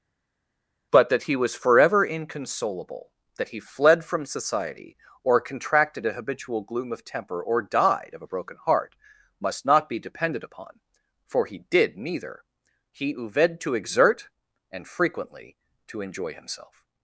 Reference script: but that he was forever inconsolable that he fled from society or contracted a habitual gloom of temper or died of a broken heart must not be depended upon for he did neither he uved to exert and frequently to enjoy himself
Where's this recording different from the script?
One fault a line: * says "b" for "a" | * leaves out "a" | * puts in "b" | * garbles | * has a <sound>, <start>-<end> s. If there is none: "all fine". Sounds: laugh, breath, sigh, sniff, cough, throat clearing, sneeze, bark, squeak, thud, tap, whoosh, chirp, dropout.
all fine